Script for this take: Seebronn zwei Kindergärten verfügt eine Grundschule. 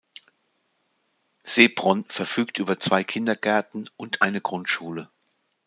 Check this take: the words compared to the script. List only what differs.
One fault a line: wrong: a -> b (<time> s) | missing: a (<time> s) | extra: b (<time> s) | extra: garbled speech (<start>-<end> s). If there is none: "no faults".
extra: verfügt über (2.1 s)
wrong: verfügt -> und (4.0 s)